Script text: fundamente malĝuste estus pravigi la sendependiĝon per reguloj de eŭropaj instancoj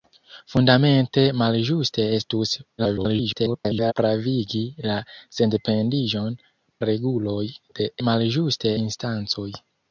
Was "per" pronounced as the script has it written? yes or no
no